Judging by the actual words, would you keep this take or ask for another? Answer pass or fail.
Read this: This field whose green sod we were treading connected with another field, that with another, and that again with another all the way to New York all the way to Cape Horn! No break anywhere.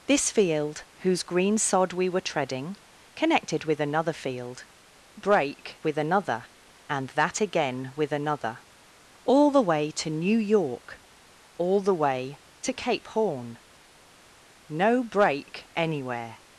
fail